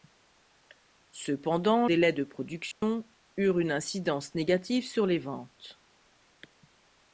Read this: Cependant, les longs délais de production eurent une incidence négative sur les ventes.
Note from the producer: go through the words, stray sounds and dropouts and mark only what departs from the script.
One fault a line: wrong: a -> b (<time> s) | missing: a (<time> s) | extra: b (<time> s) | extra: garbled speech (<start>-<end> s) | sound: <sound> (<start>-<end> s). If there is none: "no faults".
missing: les longs (1.9 s)
sound: dropout (2.7-2.8 s)